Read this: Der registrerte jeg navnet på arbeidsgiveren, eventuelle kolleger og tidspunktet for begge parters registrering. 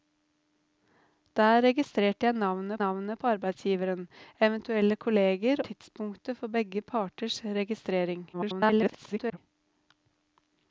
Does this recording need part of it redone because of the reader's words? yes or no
yes